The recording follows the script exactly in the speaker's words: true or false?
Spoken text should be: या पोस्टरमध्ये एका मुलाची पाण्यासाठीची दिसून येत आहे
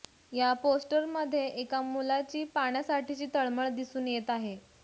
false